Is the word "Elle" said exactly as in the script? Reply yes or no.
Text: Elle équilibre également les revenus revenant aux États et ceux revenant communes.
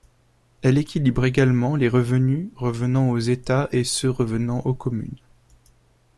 yes